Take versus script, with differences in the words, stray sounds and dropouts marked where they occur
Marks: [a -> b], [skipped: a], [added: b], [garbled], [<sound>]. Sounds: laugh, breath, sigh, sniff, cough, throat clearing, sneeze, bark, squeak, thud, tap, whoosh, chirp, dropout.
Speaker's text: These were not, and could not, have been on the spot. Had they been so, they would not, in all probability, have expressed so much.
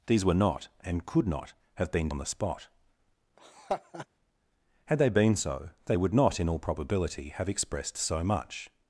These were not, and could not, have been on the spot. [laugh] Had they been so, they would not, in all probability, have expressed so much.